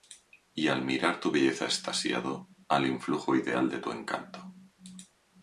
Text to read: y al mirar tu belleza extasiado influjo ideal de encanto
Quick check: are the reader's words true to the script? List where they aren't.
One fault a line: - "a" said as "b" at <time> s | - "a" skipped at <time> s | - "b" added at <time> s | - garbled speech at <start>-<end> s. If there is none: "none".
- "al" added at 2.7 s
- "tu" added at 3.8 s